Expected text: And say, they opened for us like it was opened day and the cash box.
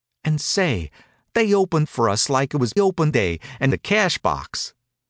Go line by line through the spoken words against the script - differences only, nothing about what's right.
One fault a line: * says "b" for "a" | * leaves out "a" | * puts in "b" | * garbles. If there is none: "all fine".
all fine